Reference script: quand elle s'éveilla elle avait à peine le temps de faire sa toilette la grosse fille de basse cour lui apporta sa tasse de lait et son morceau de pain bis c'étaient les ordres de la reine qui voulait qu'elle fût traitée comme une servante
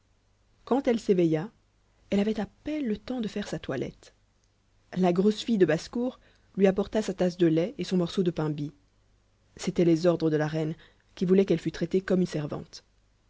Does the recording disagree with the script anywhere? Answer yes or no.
no